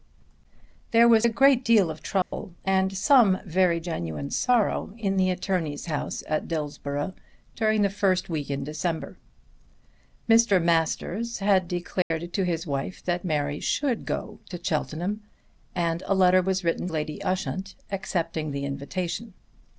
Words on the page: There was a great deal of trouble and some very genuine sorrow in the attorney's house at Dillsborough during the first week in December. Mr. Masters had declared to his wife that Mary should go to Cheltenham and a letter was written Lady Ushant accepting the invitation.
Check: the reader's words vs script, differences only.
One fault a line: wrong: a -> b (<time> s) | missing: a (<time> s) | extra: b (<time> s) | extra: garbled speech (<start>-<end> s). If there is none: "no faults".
no faults